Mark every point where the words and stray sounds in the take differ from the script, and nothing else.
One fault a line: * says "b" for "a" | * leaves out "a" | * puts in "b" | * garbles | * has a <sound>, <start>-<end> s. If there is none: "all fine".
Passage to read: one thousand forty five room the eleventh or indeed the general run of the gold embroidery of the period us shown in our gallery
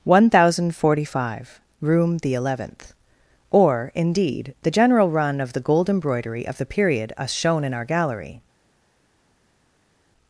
all fine